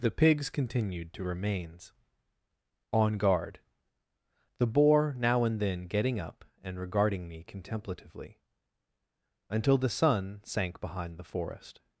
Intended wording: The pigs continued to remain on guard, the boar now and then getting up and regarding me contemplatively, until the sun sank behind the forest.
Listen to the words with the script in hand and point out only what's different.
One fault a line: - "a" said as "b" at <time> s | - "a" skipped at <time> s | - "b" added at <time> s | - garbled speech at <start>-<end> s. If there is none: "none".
- "remain" said as "remains" at 1.2 s